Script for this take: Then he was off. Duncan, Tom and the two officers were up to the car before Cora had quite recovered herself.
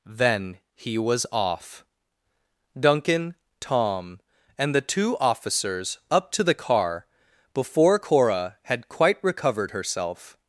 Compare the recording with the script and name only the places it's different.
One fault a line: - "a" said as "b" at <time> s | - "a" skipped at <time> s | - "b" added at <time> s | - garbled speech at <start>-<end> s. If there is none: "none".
- "were" skipped at 6.0 s